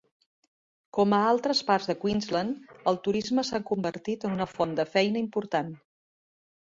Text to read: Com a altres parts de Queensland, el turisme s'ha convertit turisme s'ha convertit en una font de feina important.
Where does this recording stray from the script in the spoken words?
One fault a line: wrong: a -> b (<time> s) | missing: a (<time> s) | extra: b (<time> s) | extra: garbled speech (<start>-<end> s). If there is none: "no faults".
missing: turisme s'ha convertit (4.3 s)